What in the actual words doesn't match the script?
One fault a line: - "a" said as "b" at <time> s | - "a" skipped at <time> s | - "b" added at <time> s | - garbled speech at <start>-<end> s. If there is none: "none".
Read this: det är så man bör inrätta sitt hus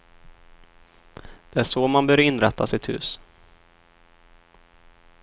none